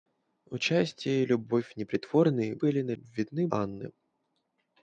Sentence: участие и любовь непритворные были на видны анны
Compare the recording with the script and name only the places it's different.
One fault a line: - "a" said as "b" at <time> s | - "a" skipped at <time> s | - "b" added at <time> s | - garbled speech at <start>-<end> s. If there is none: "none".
none